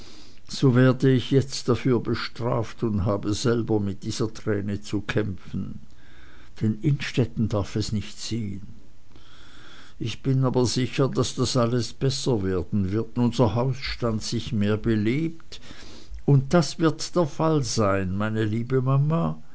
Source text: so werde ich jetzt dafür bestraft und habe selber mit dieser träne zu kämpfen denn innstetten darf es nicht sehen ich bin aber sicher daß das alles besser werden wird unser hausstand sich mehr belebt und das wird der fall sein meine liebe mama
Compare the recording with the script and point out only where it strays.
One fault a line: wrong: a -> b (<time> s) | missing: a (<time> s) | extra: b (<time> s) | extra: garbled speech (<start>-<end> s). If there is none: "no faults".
no faults